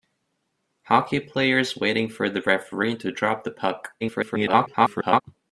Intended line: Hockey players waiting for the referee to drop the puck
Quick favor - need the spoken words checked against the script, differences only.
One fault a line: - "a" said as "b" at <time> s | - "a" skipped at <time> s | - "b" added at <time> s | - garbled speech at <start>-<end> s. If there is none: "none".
- garbled speech at 4.0-5.2 s